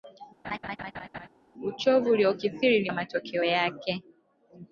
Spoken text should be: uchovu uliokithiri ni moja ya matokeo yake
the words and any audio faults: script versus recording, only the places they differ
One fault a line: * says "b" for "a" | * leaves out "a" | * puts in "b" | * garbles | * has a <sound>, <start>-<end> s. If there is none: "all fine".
* has a laugh, 0.4-1.3 s
* leaves out "moja"